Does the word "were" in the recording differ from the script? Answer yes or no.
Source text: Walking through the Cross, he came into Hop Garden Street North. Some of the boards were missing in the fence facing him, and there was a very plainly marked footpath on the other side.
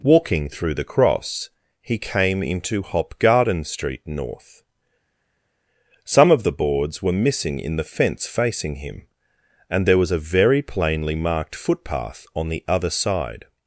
no